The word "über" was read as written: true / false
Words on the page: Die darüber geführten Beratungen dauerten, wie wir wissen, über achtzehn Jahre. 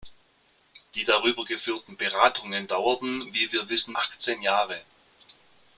false